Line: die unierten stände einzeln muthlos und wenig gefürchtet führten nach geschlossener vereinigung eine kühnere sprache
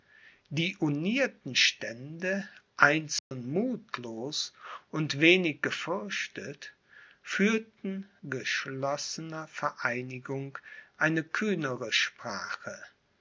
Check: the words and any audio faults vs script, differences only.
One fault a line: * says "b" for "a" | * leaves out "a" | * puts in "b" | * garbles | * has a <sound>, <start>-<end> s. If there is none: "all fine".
* has a dropout, 3.2-3.3 s
* leaves out "nach"